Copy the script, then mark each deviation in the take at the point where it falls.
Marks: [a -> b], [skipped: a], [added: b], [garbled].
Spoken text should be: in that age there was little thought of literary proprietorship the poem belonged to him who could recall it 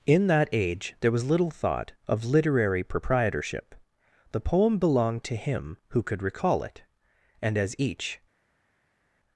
in that age there was little thought of literary proprietorship the poem belonged to him who could recall it [added: and as each]